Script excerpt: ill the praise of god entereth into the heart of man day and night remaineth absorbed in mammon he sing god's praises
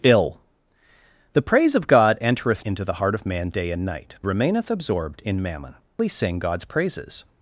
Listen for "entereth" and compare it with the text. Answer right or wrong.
right